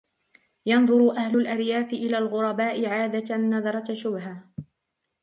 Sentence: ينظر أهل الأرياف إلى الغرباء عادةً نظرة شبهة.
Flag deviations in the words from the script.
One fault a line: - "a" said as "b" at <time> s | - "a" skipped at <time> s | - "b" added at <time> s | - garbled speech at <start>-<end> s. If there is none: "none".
none